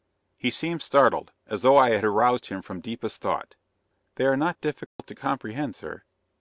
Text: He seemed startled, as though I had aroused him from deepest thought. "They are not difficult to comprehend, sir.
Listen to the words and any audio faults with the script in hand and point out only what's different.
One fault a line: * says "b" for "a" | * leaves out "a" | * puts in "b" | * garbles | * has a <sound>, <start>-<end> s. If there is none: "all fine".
* has a dropout, 4.9-5.0 s